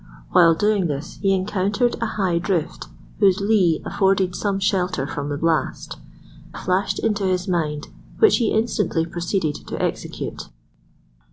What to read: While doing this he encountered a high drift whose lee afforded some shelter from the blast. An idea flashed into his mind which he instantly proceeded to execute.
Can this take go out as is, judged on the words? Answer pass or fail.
fail